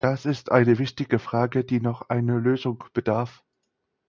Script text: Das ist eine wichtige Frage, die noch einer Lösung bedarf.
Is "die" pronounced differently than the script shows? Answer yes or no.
no